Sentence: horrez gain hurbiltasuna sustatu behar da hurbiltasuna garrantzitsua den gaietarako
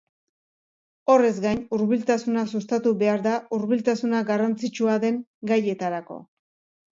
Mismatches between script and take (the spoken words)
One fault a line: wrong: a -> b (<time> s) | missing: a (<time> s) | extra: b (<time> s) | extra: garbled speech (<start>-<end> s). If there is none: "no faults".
no faults